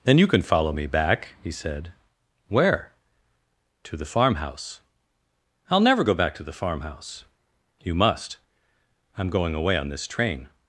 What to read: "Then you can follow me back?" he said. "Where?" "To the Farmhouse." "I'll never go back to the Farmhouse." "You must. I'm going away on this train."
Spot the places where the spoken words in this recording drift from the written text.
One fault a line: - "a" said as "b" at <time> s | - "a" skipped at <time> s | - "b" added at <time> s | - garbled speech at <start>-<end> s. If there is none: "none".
none